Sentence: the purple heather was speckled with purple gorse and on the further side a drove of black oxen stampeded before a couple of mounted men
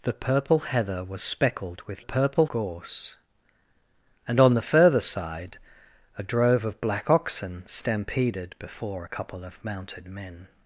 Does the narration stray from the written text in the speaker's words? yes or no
no